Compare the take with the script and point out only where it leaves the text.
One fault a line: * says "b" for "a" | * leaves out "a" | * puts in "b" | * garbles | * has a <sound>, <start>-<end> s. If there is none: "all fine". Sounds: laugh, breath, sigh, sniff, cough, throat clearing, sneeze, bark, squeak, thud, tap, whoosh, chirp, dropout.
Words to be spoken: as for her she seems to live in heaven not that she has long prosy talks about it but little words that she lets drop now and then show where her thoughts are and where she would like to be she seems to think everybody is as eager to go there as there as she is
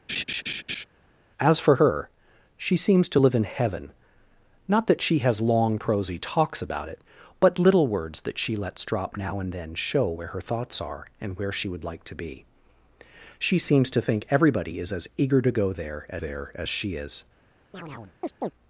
* has a laugh, 0.1-0.8 s
* has a chirp, 17.7-18.5 s